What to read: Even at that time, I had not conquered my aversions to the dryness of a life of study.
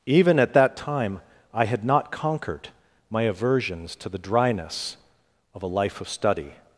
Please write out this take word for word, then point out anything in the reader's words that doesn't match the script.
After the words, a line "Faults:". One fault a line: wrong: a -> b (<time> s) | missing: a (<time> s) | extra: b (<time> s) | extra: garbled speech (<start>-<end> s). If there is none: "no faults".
Even at that time, I had not conquered my aversions to the dryness of a life of study.
Faults:
no faults